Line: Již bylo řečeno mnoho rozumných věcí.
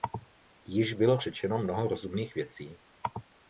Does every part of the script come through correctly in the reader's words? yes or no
yes